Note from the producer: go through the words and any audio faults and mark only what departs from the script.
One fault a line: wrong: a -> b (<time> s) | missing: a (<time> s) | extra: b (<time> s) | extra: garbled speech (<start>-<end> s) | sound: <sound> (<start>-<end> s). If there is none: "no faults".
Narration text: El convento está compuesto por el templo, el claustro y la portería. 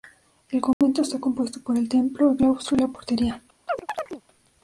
sound: dropout (0.7-0.8 s)
sound: chirp (3.7-4.2 s)